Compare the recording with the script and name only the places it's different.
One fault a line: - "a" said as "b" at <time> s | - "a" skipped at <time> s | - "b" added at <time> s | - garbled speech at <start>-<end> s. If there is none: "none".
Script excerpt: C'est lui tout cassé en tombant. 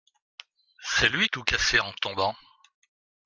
none